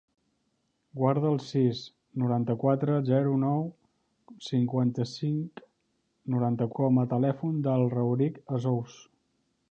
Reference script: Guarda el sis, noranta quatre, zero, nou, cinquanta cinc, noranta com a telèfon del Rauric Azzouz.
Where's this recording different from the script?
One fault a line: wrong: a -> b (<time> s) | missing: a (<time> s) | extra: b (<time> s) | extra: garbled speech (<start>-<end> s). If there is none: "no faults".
no faults